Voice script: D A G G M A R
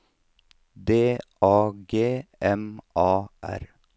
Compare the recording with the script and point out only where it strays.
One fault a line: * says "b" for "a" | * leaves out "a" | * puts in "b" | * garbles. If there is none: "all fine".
* leaves out "G"